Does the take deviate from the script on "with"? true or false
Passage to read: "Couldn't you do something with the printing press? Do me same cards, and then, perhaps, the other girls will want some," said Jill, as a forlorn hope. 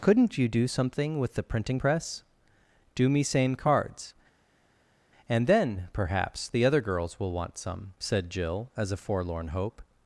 false